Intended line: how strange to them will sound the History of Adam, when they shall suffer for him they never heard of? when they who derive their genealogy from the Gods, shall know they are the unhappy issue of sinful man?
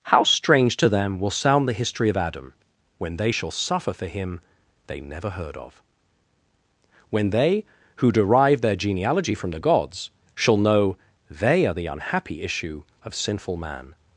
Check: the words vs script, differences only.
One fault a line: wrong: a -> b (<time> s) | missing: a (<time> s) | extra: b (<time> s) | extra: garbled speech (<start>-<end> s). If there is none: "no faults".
no faults